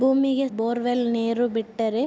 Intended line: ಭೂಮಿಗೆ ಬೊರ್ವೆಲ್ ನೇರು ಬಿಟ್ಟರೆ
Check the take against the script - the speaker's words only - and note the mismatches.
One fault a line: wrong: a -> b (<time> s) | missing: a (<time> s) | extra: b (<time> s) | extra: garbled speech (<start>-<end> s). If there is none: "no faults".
no faults